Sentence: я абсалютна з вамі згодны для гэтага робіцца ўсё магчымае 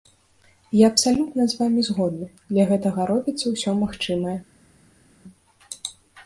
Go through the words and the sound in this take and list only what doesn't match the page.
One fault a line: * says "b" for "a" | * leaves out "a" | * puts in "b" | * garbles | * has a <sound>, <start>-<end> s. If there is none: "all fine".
all fine